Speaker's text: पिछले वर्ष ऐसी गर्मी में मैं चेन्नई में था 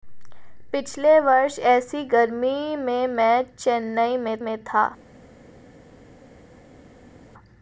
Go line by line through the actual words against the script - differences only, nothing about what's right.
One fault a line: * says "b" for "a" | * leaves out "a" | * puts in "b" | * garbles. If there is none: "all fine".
* puts in "में"